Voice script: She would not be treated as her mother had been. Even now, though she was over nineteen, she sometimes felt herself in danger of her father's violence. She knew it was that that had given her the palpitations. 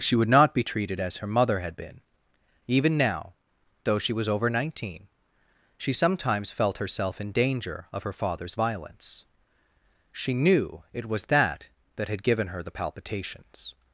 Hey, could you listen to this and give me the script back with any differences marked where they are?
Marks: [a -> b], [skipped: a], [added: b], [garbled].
She would not be treated as her mother had been. Even now, though she was over nineteen, she sometimes felt herself in danger of her father's violence. She knew it was that that had given her the palpitations.